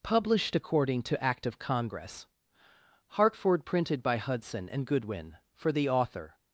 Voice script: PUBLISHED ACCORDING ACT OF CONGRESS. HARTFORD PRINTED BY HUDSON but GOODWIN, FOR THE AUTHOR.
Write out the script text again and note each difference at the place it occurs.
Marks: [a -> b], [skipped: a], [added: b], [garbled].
PUBLISHED ACCORDING [added: TO] ACT OF CONGRESS. HARTFORD PRINTED BY HUDSON [but -> and] GOODWIN, FOR THE AUTHOR.